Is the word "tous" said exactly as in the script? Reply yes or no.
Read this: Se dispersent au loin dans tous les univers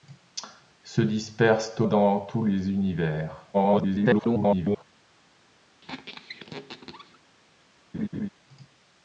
yes